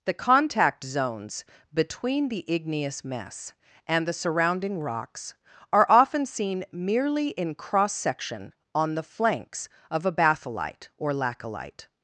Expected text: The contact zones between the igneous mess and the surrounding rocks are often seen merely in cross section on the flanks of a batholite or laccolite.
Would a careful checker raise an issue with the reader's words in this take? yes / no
no